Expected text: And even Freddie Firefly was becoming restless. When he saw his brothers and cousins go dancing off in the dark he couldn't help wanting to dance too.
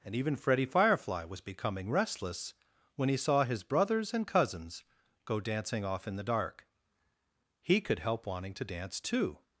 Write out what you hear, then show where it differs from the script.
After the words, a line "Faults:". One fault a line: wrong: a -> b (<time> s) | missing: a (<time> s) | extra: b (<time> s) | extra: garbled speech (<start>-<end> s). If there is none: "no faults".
And even Freddie Firefly was becoming restless. When he saw his brothers and cousins go dancing off in the dark he could help wanting to dance too.
Faults:
wrong: couldn't -> could (7.8 s)